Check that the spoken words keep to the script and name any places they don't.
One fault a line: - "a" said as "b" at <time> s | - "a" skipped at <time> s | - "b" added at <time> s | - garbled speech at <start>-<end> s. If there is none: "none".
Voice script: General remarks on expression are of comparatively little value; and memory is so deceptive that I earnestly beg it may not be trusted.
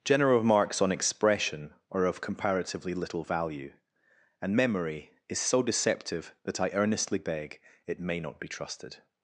none